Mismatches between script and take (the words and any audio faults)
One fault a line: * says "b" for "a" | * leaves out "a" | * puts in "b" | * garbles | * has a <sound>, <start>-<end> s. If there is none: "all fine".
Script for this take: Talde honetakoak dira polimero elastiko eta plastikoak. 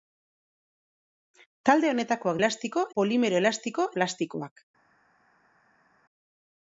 * says "elastiko" for "dira"
* leaves out "eta"